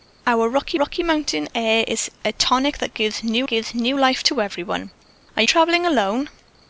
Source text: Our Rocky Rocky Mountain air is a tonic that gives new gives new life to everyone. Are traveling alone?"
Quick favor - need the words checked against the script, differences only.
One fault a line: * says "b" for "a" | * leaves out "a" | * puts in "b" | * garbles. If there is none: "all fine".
all fine